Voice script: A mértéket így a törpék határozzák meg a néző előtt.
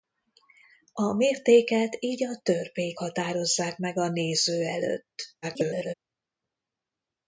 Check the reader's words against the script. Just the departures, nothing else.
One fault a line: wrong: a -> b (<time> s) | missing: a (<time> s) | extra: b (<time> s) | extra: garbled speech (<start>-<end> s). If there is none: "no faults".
extra: garbled speech (5.4-5.9 s)